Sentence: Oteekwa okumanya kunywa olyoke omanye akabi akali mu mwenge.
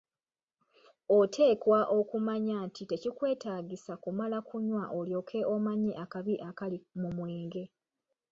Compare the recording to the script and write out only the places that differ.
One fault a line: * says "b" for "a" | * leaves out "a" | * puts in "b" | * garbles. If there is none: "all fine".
* puts in "nti tekikwetaagisa kumala"